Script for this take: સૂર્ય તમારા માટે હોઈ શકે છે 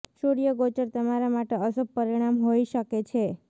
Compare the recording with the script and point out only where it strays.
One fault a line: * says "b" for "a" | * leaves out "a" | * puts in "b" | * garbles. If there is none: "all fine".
* puts in "ગોચર"
* puts in "અશુભ પરિણામ"